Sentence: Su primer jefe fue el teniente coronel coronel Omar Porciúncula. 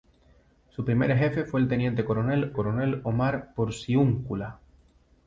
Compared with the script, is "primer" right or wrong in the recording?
right